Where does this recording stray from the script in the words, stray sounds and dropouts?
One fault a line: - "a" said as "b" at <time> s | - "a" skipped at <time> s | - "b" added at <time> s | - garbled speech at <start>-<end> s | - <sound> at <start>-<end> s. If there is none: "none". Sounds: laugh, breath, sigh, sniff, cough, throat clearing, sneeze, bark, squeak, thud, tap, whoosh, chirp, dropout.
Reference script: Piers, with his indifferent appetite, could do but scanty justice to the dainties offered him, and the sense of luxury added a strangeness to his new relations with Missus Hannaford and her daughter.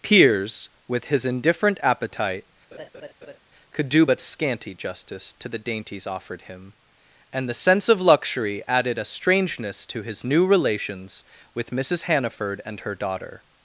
- laugh at 2.7-3.4 s